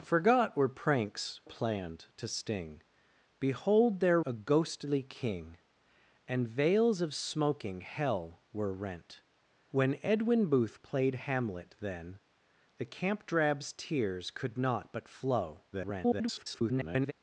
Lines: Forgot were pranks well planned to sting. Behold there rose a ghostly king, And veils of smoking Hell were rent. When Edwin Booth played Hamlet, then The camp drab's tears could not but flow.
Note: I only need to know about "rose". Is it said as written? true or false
false